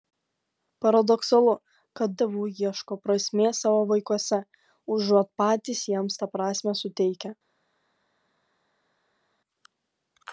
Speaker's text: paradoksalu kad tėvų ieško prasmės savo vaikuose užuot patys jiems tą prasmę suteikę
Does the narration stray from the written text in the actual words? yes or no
no